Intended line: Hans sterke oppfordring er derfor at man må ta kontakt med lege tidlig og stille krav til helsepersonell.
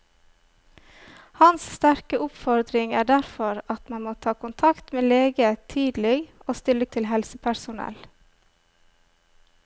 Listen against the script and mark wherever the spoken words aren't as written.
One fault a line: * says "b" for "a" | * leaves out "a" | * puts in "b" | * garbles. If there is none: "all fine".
* leaves out "krav"